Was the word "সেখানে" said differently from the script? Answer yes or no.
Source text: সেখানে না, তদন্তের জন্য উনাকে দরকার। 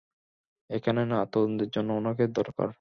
yes